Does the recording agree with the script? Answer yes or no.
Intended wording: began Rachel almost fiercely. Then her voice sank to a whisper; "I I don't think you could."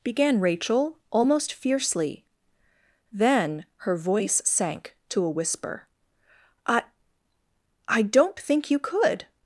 yes